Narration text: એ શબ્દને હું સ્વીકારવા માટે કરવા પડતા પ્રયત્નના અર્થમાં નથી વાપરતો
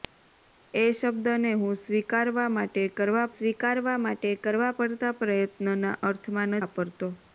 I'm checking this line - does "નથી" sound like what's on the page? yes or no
no